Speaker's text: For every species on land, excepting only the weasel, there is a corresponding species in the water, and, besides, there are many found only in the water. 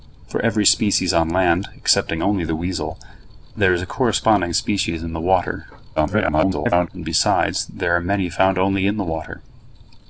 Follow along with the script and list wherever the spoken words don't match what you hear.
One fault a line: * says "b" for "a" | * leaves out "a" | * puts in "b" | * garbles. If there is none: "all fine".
* garbles